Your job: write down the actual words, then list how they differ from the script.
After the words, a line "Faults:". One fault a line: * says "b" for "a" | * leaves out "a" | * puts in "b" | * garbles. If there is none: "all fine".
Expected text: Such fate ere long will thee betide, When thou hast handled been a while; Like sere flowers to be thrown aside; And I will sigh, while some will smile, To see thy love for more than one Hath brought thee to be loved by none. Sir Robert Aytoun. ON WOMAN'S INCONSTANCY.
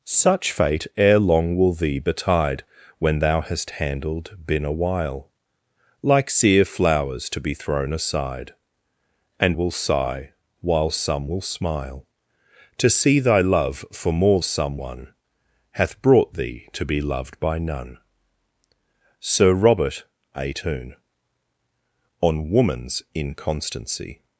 Such fate ere long will thee betide, When thou hast handled been a while; Like sere flowers to be thrown aside; And will sigh, while some will smile, To see thy love for more some one Hath brought thee to be loved by none. Sir Robert Aytoun. ON WOMAN'S INCONSTANCY.
Faults:
* leaves out "I"
* says "some" for "than"